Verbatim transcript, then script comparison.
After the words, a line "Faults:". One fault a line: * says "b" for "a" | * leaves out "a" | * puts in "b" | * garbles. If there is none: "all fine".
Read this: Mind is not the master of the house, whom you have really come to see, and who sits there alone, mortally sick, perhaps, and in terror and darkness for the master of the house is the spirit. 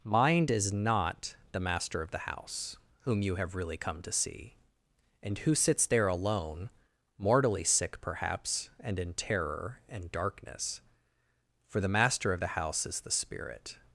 Mind is not the master of the house, whom you have really come to see, and who sits there alone, mortally sick, perhaps, and in terror and darkness for the master of the house is the spirit.
Faults:
all fine